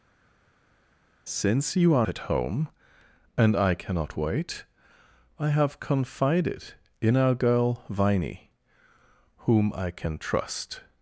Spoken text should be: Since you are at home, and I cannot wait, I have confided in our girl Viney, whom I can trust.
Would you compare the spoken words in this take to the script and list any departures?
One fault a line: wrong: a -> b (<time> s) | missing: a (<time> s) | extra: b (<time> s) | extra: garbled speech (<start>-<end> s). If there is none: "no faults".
no faults